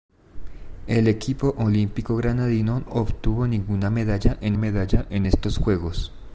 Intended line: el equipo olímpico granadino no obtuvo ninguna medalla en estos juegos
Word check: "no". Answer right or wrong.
wrong